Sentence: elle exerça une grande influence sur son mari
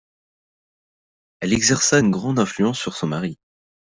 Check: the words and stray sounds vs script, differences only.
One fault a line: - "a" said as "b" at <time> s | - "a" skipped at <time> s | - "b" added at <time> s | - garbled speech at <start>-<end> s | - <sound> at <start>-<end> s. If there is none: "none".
none